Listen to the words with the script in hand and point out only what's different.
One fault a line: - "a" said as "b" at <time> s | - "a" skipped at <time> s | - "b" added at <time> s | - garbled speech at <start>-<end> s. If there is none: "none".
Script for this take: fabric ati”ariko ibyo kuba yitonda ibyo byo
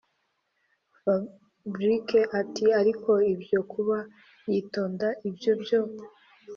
none